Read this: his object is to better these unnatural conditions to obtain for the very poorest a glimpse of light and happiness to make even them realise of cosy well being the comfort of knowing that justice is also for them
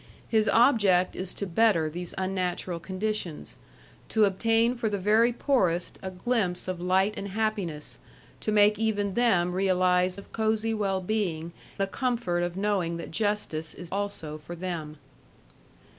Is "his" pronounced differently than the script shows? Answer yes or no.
no